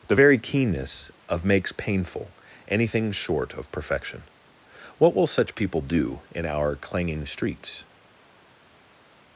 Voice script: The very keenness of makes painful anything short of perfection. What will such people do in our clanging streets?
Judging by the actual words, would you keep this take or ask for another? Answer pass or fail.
pass